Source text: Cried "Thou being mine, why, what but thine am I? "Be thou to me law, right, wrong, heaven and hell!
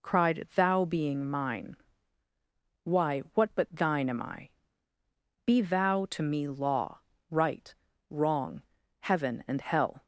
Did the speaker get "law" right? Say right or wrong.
right